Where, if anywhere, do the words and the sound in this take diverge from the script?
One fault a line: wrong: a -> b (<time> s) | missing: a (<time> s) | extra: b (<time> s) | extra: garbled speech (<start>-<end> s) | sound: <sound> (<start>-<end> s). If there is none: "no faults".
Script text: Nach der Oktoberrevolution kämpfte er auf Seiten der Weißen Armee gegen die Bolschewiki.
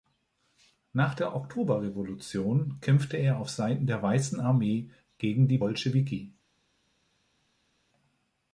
no faults